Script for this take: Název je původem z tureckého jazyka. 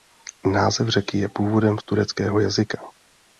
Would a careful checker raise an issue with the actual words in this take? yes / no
yes